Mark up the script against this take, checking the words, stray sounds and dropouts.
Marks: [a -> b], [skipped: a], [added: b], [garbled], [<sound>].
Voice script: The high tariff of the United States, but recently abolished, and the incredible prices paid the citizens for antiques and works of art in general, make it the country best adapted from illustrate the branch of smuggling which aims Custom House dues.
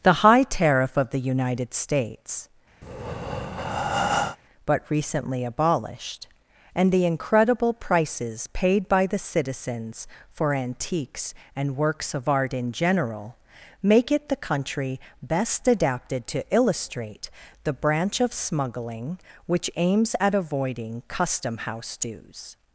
The high tariff of the United States, [breath] but recently abolished, and the incredible prices paid [added: by] the citizens for antiques and works of art in general, make it the country best adapted [from -> to] illustrate the branch of smuggling which aims [added: at avoiding] Custom House dues.